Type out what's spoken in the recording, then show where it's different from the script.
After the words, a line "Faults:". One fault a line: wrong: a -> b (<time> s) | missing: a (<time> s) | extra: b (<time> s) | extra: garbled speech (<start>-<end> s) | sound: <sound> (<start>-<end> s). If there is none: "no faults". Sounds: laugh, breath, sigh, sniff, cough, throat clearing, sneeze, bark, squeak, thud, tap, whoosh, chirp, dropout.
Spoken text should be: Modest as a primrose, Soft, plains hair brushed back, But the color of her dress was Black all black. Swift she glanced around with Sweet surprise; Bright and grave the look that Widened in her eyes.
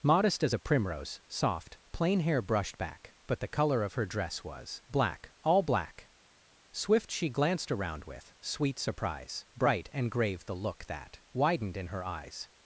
Modest as a primrose, Soft, plain hair brushed back, But the color of her dress was Black all black. Swift she glanced around with Sweet surprise; Bright and grave the look that Widened in her eyes.
Faults:
wrong: plains -> plain (1.9 s)